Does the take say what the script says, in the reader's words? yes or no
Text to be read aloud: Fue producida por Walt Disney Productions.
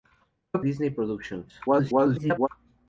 no